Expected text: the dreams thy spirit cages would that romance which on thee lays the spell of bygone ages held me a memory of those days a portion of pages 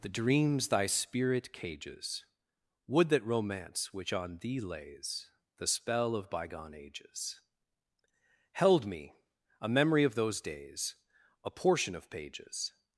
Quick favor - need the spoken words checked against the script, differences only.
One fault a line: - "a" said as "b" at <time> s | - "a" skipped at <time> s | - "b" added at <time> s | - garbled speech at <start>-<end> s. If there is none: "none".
none